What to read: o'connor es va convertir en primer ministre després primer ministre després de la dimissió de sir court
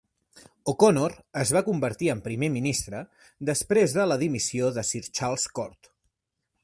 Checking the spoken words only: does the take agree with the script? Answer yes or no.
no